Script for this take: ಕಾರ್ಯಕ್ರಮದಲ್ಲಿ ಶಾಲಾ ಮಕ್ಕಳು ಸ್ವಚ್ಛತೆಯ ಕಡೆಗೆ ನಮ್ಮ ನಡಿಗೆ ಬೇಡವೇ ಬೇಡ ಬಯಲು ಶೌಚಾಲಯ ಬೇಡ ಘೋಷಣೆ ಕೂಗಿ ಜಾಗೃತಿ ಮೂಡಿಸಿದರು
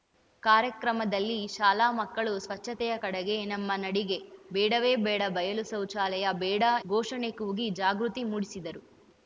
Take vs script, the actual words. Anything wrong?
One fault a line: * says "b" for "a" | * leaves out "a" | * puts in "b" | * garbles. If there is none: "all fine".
all fine